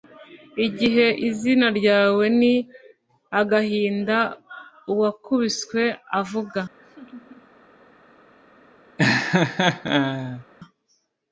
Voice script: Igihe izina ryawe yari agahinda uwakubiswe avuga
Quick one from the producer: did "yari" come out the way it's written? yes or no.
no